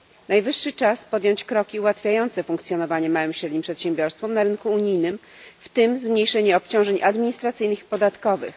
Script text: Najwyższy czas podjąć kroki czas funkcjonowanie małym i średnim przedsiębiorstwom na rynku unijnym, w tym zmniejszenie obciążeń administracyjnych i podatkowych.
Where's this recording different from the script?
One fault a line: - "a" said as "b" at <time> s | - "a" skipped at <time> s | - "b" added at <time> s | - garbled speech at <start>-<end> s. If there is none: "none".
- "czas" said as "ułatwiające" at 1.8 s